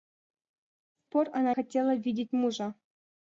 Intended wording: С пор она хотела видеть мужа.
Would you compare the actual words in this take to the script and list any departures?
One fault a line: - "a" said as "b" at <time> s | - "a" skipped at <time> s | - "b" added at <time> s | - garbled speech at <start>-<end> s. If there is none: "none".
none